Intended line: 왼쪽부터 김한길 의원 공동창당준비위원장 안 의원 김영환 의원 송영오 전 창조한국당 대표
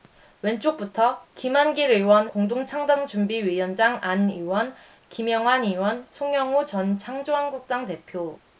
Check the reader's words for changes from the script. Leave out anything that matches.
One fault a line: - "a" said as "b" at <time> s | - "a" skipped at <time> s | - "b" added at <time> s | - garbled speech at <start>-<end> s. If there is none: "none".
none